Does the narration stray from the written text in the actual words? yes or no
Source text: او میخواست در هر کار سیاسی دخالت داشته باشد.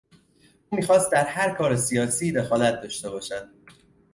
no